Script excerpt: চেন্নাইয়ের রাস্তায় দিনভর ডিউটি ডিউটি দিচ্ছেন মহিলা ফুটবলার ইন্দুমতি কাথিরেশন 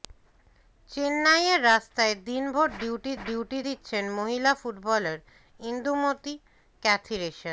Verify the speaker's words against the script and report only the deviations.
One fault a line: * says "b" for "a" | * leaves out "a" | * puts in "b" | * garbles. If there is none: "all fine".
all fine